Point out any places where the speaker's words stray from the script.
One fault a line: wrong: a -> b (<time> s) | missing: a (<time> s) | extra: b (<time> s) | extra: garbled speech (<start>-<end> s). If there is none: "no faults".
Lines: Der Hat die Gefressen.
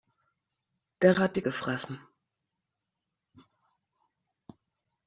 no faults